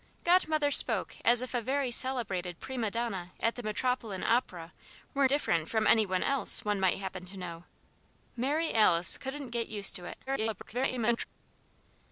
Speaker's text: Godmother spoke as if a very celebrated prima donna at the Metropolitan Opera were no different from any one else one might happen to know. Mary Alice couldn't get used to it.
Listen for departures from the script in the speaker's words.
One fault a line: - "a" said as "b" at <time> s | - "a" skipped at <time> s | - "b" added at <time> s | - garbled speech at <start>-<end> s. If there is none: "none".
- "no" skipped at 5.3 s
- garbled speech at 10.3-11.3 s